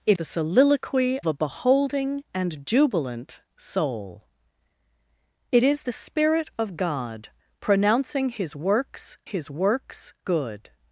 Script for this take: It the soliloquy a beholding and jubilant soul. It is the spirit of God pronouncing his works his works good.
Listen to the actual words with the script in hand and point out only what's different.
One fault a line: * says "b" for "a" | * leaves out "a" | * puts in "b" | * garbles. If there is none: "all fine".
all fine